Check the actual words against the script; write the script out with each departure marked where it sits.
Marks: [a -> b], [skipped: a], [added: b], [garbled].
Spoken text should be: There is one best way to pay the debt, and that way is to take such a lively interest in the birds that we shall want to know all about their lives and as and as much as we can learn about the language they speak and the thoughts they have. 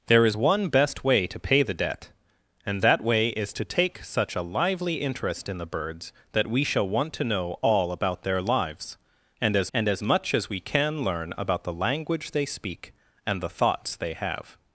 There is one best way to pay the debt, and that way is to take such a lively interest in the birds that we shall want to know all about their lives and as and as much as we can learn about the language they speak and the thoughts they have.